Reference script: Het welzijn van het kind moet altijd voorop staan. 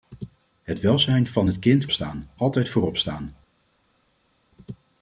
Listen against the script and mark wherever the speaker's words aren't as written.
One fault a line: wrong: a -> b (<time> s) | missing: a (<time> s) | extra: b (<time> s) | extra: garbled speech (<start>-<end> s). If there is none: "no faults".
wrong: moet -> staan (1.9 s)